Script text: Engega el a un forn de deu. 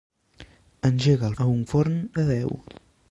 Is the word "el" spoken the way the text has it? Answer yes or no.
yes